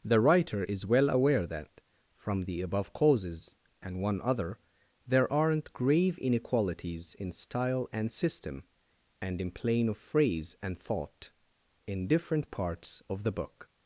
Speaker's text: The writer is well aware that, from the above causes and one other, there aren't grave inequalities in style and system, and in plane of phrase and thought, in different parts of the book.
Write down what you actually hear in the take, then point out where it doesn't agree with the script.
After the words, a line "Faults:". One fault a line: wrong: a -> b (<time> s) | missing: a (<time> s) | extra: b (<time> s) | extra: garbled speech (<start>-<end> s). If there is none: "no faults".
The writer is well aware that, from the above causes and one other, there aren't grave inequalities in style and system, and in plane of phrase and thought, in different parts of the book.
Faults:
no faults